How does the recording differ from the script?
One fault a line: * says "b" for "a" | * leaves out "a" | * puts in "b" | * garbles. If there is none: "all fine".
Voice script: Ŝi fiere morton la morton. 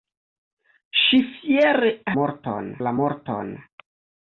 all fine